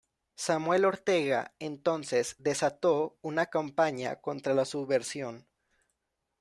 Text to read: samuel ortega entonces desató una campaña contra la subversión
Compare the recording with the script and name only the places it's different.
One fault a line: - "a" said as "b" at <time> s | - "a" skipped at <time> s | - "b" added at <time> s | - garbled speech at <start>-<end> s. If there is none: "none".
none